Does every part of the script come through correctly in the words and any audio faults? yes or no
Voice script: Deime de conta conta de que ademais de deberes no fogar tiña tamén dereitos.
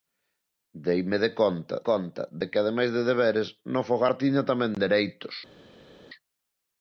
yes